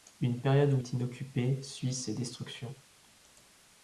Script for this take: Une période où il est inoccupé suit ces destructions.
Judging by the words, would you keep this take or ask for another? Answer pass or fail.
fail